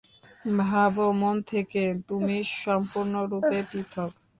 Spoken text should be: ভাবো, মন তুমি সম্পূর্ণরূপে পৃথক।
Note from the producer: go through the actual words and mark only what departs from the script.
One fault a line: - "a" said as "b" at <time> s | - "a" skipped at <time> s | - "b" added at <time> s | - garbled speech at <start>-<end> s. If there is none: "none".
- "থেকে" added at 1.5 s